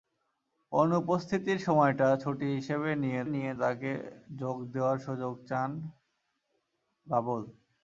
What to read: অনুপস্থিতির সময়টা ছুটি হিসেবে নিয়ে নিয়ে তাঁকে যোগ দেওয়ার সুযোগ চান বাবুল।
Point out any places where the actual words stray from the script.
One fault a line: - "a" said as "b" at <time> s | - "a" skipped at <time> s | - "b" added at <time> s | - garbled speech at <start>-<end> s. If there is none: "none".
none